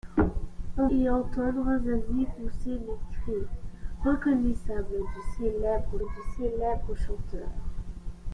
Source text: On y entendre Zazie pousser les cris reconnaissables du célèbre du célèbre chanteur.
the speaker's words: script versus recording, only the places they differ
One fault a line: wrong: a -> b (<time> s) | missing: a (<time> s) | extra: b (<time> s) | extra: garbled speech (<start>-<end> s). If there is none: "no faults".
no faults